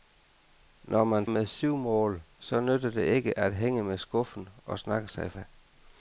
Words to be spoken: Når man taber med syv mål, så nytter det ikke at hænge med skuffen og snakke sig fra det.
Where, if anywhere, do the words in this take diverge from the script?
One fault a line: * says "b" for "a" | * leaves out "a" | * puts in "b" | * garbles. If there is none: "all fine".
* leaves out "taber"
* leaves out "fra"